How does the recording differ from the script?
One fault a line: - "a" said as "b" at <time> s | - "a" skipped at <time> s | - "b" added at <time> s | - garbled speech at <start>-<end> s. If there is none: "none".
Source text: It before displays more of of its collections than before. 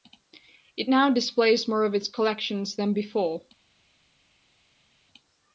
- "before" said as "now" at 0.9 s
- "of" skipped at 1.9 s